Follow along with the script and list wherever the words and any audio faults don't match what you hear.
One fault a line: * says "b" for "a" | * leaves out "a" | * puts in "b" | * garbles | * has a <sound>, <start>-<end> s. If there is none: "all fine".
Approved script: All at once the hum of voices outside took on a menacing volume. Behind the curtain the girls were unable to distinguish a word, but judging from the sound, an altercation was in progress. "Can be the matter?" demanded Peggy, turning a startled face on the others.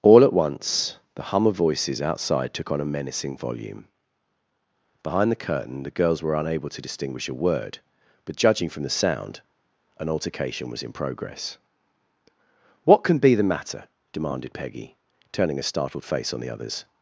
* puts in "What"